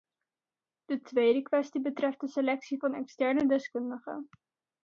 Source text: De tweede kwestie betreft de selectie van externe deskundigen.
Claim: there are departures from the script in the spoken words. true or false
false